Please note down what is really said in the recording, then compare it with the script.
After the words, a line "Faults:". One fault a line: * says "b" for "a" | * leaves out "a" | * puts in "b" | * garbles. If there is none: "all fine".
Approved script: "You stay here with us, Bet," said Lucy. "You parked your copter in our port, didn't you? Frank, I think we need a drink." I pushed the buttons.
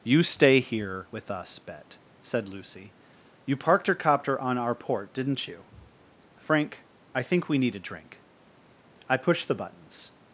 "You stay here with us, Bet," said Lucy. "You parked your copter on our port, didn't you? Frank, I think we need a drink." I pushed the buttons.
Faults:
* says "on" for "in"